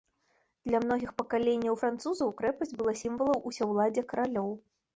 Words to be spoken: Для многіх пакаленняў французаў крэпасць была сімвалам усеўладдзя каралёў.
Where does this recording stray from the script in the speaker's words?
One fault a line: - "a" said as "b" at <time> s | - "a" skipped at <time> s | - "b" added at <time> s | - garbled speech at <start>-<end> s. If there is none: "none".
none